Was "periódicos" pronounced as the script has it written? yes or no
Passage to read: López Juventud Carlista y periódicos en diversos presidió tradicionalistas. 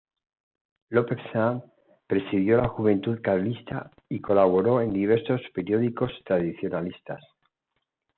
no